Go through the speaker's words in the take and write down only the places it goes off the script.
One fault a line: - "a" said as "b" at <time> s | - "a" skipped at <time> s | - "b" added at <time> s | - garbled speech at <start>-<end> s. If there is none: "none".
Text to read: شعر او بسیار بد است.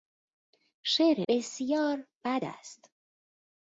- "او" skipped at 1.2 s